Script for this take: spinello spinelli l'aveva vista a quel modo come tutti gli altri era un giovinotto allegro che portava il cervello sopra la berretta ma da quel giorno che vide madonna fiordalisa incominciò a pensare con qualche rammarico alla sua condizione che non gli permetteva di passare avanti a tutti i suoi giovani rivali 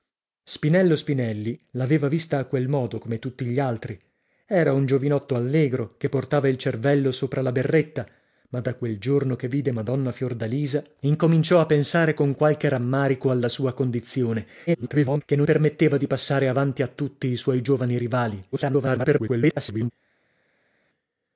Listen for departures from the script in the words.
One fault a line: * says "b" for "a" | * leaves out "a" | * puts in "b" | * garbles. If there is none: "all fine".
* garbles
* leaves out "gli"
* garbles